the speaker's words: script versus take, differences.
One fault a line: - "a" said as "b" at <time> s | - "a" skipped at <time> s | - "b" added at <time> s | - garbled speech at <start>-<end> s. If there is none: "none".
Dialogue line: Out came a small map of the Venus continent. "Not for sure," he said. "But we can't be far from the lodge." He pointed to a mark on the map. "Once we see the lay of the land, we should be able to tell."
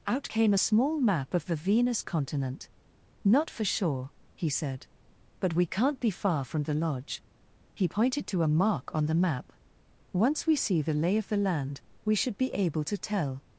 none